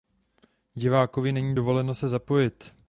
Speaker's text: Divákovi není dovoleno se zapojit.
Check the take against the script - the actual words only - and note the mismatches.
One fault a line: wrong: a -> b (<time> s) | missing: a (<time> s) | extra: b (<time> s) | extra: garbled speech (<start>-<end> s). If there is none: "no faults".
no faults